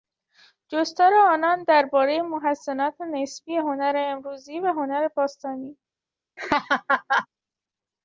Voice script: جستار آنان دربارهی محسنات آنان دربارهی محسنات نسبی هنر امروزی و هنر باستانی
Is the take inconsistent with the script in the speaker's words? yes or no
yes